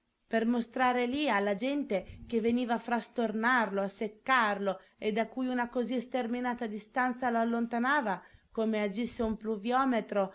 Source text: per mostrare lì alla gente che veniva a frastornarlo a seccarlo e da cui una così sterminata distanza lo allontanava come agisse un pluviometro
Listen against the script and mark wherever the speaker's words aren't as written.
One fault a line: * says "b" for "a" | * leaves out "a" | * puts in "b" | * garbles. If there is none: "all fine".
all fine